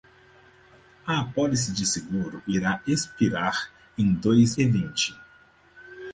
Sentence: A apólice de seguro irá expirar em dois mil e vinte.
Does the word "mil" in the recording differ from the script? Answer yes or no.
yes